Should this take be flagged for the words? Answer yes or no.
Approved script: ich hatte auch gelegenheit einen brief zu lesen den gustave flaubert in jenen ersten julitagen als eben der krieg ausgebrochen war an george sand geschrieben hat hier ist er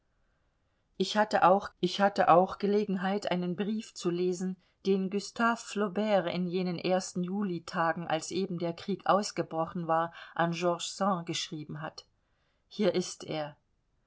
yes